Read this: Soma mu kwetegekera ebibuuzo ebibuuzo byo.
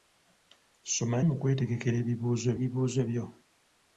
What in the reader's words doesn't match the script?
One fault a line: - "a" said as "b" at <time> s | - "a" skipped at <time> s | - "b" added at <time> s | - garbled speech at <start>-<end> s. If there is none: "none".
none